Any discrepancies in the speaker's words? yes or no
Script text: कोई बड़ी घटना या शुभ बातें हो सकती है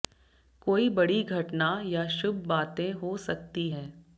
no